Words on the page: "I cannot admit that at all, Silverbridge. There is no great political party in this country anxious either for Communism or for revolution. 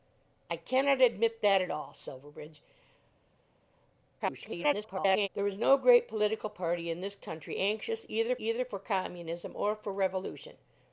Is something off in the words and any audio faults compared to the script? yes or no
yes